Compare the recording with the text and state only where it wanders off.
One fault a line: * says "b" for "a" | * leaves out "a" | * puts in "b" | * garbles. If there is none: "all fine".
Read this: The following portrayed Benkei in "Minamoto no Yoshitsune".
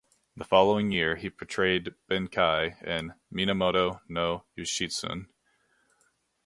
* puts in "year he"